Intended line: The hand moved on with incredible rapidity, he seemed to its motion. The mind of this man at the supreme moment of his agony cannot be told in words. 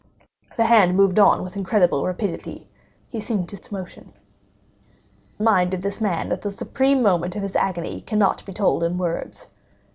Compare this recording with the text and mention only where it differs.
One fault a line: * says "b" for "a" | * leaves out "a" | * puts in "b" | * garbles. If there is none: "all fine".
all fine